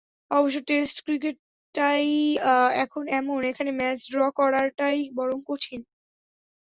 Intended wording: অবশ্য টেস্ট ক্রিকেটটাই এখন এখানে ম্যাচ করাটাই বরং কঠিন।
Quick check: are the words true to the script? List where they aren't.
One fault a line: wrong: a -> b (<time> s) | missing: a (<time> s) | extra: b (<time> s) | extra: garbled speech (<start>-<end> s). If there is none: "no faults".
extra: এমন (3.2 s)
extra: ড্র (4.1 s)